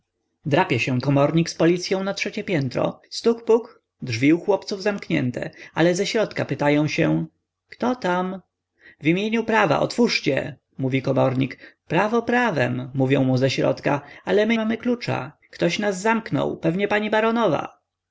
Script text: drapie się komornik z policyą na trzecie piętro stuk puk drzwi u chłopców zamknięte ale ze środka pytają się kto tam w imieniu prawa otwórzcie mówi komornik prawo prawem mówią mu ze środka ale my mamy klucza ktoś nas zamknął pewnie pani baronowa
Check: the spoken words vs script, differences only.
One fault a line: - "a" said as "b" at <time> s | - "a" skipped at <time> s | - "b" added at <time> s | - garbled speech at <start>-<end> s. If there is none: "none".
none